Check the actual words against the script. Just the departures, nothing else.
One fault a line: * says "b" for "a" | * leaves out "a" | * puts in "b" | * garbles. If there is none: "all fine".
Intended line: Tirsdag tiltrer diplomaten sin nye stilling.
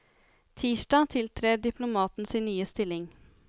all fine